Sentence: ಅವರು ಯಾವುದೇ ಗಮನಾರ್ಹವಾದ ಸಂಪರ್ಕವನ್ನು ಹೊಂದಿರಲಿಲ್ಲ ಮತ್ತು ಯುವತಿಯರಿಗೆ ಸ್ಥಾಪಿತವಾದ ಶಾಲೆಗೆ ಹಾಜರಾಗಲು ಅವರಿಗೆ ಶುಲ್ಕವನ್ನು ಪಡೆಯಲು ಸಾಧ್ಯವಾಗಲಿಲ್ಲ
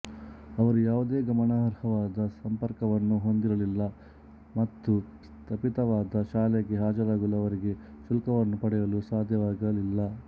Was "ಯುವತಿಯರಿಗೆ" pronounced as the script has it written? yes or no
no